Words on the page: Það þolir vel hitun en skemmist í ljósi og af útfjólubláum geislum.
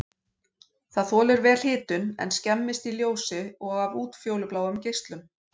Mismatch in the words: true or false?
false